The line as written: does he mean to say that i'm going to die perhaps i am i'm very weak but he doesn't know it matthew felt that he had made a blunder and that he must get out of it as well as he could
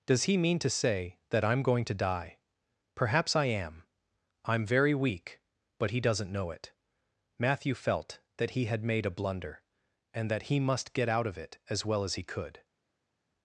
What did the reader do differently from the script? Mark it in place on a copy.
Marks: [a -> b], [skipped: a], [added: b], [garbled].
does he mean to say that i'm going to die perhaps i am i'm very weak but he doesn't know it matthew felt that he had made a blunder and that he must get out of it as well as he could